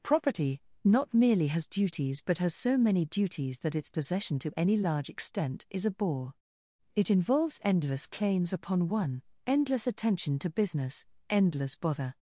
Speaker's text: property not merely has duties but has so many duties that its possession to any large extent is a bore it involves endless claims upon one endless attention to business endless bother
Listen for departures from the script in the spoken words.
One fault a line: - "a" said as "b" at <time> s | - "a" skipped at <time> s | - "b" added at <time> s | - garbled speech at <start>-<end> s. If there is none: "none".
none